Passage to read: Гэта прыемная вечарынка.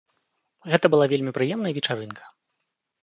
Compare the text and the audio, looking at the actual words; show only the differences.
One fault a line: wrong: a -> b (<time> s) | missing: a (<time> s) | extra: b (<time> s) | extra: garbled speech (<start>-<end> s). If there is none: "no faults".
extra: была вельмі (0.9 s)